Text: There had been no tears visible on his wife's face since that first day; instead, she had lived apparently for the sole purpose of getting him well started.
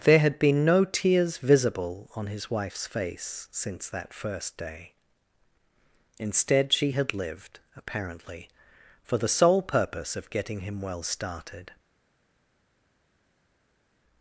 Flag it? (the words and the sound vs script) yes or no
no